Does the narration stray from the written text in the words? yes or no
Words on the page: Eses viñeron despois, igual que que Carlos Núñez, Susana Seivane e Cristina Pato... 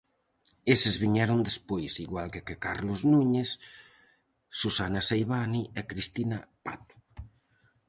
no